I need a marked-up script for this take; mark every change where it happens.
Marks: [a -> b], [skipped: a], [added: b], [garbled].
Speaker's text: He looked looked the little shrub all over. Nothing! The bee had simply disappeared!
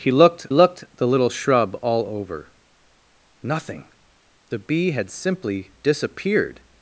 He looked looked the little shrub all over. Nothing! The bee had simply disappeared!